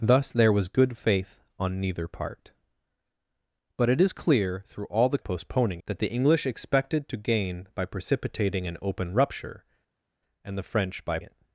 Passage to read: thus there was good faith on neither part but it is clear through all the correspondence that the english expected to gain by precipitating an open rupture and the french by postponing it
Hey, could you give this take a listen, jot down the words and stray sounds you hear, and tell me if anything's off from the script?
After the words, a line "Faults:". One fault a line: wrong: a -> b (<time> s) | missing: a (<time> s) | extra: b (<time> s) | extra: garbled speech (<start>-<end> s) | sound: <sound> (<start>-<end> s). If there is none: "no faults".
thus there was good faith on neither part but it is clear through all the postponing that the english expected to gain by precipitating an open rupture and the french by it
Faults:
wrong: correspondence -> postponing (5.2 s)
missing: postponing (11.2 s)